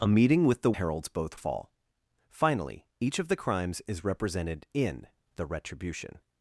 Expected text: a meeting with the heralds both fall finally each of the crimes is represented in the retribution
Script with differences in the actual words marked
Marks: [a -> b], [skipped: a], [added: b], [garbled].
a meeting with the heralds both fall finally each of the crimes is represented in the retribution